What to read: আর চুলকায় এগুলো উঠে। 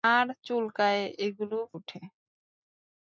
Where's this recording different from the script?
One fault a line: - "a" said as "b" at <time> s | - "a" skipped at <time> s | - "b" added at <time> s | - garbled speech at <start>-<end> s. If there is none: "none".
none